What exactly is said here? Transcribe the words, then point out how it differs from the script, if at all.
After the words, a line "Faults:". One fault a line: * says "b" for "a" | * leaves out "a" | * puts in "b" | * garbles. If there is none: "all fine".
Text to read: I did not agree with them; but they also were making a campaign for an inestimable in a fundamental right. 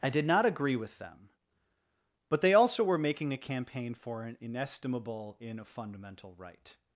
I did not agree with them; but they also were making a campaign for an inestimable in a fundamental right.
Faults:
all fine